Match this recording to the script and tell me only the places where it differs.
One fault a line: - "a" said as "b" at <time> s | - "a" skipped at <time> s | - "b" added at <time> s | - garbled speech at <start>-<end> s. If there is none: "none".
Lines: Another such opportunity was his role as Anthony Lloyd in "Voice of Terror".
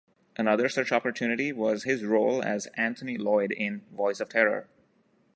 none